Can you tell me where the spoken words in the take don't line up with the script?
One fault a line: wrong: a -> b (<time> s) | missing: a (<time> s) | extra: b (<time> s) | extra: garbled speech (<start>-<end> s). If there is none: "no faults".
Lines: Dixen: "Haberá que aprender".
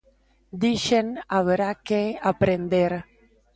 no faults